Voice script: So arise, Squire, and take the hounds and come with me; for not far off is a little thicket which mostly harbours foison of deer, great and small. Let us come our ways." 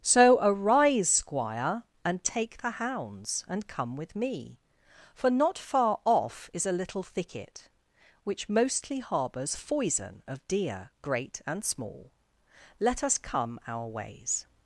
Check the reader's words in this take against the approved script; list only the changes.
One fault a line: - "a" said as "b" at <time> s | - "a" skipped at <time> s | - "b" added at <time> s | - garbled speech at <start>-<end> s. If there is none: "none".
none